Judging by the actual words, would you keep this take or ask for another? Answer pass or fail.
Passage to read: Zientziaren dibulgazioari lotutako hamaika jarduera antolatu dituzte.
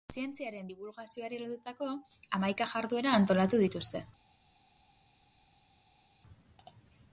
pass